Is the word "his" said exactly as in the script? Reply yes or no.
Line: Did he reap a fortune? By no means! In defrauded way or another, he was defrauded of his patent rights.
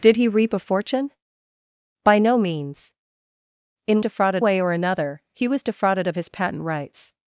yes